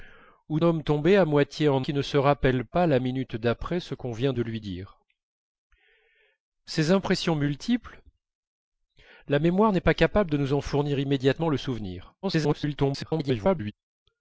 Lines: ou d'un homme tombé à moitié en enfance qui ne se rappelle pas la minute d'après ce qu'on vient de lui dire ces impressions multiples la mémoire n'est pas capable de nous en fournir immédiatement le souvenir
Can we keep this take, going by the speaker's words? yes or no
no